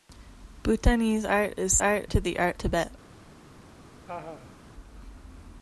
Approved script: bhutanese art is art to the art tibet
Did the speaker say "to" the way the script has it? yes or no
yes